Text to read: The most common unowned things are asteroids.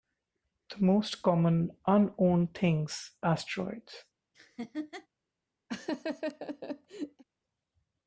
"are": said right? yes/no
no